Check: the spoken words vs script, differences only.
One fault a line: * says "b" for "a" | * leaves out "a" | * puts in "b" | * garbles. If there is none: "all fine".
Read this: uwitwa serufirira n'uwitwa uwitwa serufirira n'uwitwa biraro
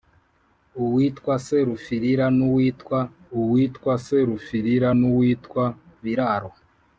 all fine